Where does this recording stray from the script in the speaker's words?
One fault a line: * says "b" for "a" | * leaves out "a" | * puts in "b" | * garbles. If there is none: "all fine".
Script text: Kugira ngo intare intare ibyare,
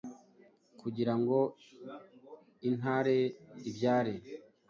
* leaves out "intare"